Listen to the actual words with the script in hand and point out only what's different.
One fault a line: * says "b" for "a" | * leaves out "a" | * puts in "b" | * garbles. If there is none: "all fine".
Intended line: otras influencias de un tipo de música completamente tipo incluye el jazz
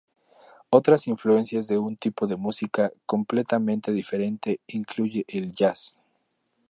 * says "diferente" for "tipo"